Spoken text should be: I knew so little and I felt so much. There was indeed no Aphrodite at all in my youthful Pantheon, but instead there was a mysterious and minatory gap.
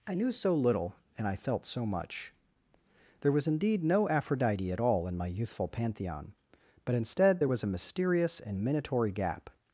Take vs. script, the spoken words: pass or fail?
pass